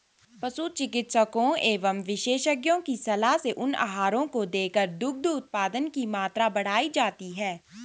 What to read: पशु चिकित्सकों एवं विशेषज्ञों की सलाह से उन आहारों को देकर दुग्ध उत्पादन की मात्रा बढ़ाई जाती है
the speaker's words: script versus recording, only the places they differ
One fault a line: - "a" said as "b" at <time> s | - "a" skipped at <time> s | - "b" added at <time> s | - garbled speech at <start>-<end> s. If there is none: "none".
none